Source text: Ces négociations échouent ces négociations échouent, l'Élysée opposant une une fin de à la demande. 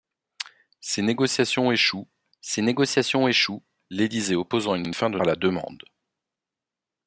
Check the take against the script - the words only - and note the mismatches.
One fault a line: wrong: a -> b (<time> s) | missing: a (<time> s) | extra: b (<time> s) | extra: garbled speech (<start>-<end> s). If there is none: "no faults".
no faults